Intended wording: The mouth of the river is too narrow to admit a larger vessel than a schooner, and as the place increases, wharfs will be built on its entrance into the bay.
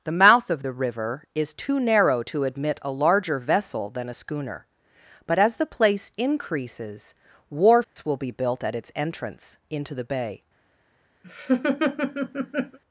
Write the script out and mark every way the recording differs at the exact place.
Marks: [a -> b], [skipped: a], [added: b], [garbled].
The mouth of the river is too narrow to admit a larger vessel than a schooner, [and -> but] as the place increases, wharfs will be built [on -> at] its entrance into the bay.